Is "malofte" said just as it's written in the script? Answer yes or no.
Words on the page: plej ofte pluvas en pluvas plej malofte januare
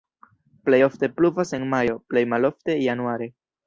yes